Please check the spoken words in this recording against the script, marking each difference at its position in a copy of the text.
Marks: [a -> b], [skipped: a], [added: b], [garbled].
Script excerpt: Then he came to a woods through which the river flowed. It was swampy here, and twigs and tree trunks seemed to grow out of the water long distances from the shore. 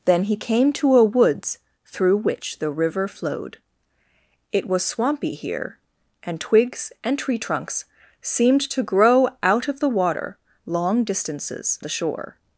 Then he came to a woods through which the river flowed. It was swampy here, and twigs and tree trunks seemed to grow out of the water long distances [skipped: from] the shore.